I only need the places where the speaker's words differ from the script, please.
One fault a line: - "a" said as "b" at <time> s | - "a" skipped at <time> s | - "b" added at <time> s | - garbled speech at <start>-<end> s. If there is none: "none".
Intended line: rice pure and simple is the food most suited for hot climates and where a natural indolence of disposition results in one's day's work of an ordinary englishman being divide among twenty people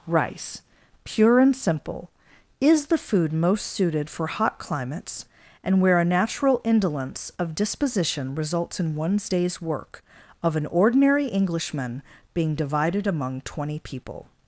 - "divide" said as "divided" at 12.5 s